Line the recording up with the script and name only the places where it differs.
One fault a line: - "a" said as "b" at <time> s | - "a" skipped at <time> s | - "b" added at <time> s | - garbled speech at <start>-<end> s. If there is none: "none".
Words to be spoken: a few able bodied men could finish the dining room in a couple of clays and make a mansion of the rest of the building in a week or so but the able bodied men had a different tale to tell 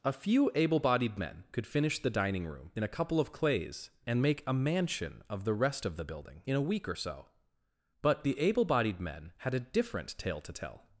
none